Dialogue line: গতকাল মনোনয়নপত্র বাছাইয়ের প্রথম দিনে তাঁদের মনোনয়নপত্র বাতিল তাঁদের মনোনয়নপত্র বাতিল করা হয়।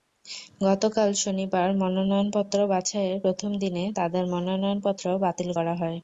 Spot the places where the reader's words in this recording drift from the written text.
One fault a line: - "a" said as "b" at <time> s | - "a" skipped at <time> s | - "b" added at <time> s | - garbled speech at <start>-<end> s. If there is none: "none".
- "শনিবার" added at 1.2 s
- "তাঁদের মনোনয়নপত্র বাতিল" skipped at 5.5 s